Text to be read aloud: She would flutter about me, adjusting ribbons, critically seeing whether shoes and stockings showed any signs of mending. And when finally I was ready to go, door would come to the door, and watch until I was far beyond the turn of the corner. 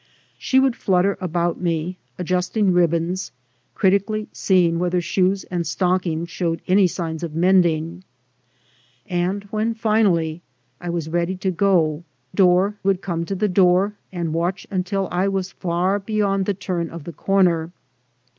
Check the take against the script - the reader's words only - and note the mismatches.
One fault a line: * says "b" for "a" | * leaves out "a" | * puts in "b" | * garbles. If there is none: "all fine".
all fine